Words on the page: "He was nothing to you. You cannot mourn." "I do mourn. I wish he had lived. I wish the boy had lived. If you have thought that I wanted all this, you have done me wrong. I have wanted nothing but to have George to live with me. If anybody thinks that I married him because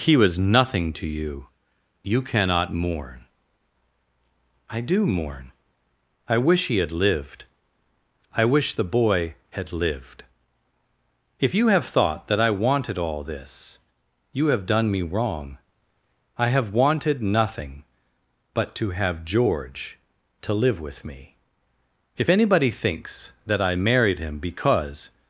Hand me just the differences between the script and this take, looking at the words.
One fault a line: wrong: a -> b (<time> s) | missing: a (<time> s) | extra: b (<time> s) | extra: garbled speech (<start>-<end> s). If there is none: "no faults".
no faults